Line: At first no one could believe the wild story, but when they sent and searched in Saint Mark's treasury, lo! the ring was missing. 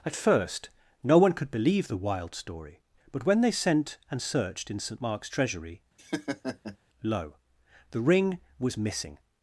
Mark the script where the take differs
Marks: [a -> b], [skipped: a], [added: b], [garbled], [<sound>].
At first no one could believe the wild story, but when they sent and searched in Saint Mark's treasury, [laugh] lo! the ring was missing.